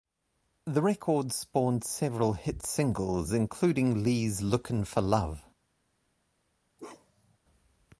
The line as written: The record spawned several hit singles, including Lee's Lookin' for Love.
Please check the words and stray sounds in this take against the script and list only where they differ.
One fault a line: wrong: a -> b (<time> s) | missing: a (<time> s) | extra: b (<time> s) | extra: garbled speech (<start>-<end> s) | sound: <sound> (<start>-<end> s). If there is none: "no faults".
sound: bark (6.8-7.4 s)